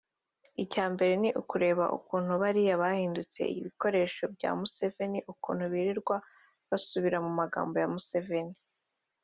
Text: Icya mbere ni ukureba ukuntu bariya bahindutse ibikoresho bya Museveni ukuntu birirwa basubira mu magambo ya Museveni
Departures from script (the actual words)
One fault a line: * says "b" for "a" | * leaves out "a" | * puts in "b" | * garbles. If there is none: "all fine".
all fine